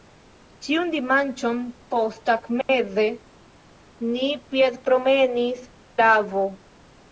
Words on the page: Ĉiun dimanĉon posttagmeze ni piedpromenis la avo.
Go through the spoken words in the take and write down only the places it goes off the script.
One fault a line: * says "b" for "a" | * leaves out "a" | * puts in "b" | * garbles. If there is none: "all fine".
all fine